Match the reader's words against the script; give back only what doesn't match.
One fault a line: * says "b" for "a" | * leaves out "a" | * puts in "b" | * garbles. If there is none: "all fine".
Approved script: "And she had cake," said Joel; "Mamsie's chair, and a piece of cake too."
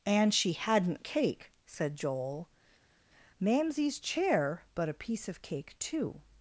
* says "hadn't" for "had"
* says "but" for "and"